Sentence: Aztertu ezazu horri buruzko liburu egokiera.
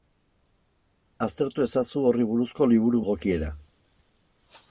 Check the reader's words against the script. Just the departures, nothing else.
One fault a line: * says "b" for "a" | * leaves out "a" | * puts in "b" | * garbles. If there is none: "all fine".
all fine